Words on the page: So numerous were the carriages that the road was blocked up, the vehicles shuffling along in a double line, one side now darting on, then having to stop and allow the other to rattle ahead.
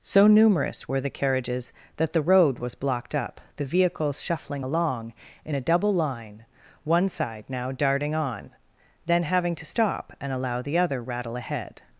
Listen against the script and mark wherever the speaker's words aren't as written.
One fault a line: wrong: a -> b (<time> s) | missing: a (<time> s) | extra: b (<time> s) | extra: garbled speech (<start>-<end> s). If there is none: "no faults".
missing: to (11.0 s)